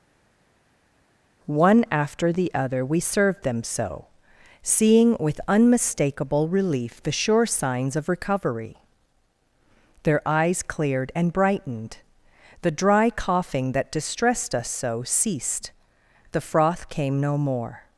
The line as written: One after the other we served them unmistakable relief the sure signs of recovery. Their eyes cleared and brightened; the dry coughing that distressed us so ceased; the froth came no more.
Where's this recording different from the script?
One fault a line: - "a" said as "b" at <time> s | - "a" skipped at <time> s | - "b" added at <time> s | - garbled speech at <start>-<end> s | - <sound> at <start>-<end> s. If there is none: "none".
- "so seeing with" added at 3.6 s